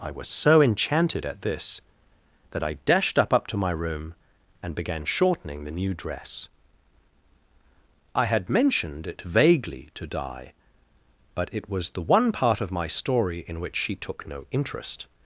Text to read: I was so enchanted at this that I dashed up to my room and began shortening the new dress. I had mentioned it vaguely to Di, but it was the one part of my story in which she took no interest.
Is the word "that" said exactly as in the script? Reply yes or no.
yes